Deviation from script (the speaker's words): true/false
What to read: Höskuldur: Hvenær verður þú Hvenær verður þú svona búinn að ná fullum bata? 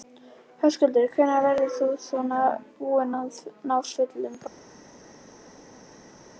true